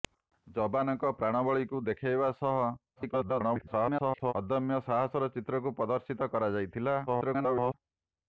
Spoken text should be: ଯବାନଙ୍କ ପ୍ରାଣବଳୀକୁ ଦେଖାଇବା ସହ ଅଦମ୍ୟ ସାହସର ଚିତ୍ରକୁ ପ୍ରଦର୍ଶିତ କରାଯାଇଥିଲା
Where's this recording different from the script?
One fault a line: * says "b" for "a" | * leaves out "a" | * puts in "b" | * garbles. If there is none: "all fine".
* garbles
* garbles